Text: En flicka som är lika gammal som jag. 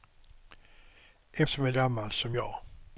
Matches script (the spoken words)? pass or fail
fail